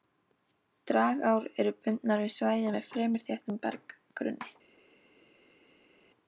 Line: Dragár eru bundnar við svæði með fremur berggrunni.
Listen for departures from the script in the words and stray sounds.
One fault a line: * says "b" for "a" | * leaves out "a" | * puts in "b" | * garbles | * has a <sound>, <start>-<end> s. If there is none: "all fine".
* puts in "þéttum"